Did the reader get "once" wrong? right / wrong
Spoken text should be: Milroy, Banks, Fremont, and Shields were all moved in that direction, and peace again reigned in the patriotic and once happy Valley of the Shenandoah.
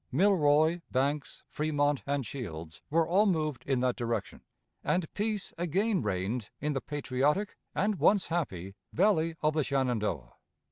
right